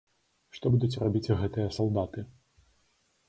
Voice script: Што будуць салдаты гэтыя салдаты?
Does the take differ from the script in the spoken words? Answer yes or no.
yes